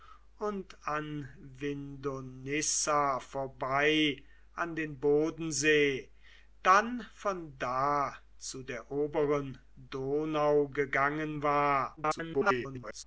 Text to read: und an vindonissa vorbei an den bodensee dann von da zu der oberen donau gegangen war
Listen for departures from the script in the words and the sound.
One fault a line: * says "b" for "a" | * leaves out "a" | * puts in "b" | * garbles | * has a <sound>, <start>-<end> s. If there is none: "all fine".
* garbles